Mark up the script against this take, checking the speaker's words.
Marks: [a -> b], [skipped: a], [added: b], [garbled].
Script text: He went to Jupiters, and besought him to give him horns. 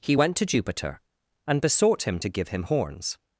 He went to [Jupiters, -> Jupiter] and besought him to give him horns.